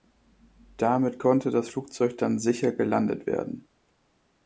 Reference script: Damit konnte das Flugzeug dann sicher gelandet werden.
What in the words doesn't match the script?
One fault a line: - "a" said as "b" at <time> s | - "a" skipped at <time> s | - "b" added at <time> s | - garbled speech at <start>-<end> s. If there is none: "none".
none